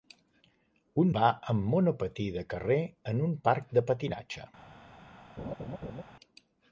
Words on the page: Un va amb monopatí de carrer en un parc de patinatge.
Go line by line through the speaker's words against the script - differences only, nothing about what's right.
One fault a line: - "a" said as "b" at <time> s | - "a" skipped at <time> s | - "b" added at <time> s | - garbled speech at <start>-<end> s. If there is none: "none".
none